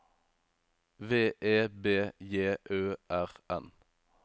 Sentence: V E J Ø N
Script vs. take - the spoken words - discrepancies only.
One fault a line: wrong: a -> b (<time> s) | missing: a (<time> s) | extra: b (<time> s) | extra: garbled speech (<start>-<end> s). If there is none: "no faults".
extra: B (1.7 s)
extra: R (3.1 s)